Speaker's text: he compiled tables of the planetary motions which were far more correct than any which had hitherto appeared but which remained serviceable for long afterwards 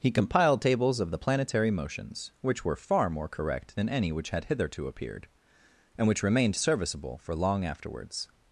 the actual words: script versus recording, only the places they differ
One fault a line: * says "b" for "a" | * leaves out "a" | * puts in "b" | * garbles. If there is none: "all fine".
* says "and" for "but"